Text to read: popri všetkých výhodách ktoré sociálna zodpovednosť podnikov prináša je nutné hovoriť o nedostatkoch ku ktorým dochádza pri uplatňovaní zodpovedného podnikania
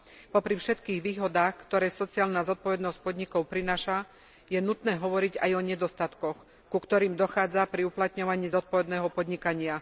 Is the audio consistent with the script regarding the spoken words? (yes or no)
no